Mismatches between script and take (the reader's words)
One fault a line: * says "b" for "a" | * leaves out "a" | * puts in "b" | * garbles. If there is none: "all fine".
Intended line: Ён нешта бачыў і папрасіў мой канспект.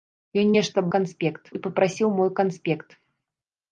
* says "канспект" for "бачыў"